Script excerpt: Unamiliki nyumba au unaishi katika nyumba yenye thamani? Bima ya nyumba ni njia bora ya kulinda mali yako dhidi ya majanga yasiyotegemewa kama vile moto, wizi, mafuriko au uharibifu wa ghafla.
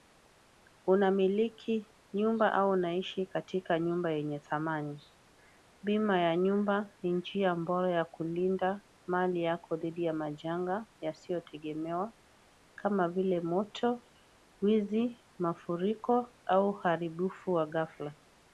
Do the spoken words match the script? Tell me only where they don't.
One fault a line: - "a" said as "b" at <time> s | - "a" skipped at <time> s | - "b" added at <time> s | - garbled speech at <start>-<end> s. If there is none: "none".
none